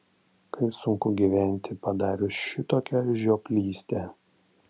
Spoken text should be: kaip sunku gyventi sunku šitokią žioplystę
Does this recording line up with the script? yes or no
no